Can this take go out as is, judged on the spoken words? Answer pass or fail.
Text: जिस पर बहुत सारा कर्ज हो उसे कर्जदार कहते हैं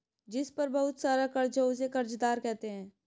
pass